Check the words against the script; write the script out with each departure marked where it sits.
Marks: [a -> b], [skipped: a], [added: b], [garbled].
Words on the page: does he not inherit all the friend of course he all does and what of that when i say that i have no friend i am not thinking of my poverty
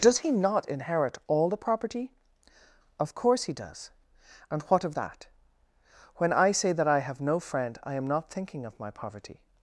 does he not inherit all the [friend -> property] of course he [skipped: all] does and what of that when i say that i have no friend i am not thinking of my poverty